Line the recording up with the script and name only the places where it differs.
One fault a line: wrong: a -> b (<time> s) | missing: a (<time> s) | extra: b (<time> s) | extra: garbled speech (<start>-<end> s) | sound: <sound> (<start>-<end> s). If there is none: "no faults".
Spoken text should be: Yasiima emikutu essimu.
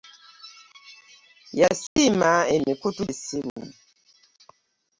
sound: dropout (1.9-2.0 s)
sound: dropout (3.5-3.6 s)